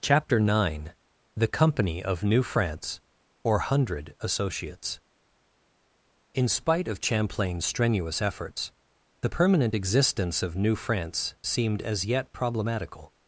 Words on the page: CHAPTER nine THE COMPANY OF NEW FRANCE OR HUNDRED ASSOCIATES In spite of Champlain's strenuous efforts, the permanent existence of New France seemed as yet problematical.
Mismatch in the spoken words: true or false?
false